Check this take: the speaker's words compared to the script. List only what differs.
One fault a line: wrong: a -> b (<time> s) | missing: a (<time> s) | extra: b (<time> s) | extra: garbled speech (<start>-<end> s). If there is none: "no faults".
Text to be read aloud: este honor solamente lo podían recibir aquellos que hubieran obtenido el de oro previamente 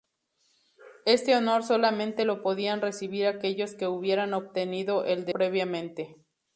missing: oro (5.3 s)